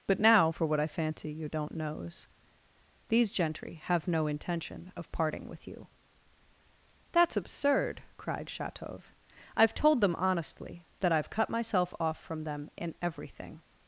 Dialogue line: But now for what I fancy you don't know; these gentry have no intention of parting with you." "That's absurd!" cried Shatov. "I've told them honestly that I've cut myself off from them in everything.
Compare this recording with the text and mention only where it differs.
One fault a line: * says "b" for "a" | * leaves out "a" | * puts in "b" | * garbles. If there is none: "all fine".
* says "knows" for "know"